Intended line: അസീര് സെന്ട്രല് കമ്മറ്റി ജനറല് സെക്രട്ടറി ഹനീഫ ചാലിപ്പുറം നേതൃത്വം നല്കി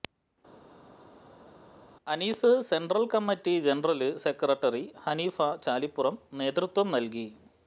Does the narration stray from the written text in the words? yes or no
no